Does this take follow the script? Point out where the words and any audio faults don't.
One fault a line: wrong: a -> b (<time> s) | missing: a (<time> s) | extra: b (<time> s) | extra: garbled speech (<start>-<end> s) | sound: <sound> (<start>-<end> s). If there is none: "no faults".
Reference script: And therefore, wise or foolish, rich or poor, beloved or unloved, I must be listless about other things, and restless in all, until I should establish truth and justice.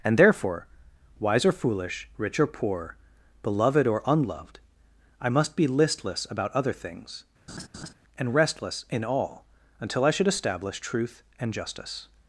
sound: laugh (7.5-7.9 s)